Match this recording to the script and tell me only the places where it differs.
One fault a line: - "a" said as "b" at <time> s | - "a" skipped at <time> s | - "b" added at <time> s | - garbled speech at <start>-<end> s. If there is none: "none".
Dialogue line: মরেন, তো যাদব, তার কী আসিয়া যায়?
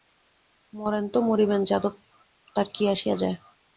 - "মরিবেন" added at 1.3 s